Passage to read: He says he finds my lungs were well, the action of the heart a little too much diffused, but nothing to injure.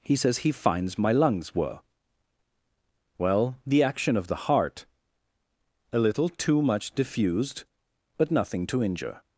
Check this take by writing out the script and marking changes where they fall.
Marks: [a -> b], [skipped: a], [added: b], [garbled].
He says he finds my lungs were well, the action of the heart a little too much diffused, but nothing to injure.